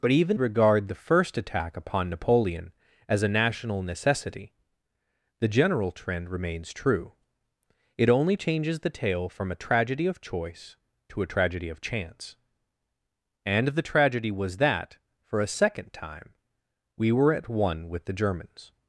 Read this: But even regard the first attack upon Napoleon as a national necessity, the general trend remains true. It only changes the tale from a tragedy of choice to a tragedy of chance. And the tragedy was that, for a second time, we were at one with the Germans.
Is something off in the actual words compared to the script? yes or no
no